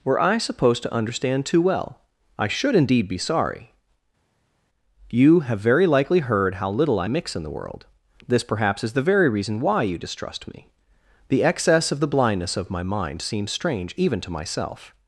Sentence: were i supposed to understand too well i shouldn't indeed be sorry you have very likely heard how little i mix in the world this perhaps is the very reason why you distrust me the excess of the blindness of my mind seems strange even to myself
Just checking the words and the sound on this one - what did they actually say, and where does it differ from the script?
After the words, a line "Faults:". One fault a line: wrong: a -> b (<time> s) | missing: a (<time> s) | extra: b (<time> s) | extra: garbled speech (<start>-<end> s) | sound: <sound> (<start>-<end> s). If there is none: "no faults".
were i supposed to understand too well i should indeed be sorry you have very likely heard how little i mix in the world this perhaps is the very reason why you distrust me the excess of the blindness of my mind seems strange even to myself
Faults:
wrong: shouldn't -> should (2.5 s)